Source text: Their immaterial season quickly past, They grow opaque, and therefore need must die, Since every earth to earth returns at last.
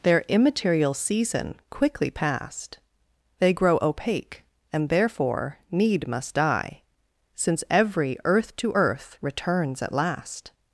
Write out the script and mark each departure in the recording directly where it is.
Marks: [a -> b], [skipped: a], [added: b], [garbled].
Their immaterial season quickly past, They grow opaque, and therefore need must die, Since every earth to earth returns at last.